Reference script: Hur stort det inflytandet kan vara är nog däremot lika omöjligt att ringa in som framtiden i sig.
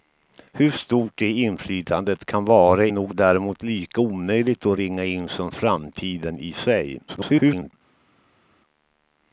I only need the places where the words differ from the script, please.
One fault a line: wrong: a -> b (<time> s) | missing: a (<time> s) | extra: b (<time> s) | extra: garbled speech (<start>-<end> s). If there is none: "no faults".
missing: är (2.9 s)
extra: garbled speech (7.1-7.7 s)